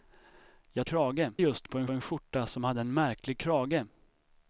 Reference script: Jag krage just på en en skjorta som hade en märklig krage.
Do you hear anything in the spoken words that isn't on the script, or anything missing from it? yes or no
no